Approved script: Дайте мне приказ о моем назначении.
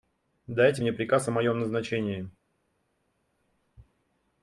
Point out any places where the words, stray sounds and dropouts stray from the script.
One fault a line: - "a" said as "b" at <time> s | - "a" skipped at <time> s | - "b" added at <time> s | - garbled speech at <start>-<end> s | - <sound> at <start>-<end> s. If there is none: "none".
none